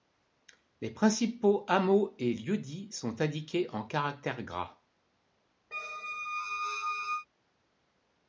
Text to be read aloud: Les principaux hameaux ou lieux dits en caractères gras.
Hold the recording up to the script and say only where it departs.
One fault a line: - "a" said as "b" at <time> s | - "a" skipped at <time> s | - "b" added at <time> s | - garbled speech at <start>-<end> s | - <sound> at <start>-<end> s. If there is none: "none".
- "ou" said as "et" at 2.2 s
- "sont indiqués" added at 2.9 s
- squeak at 5.7-7.3 s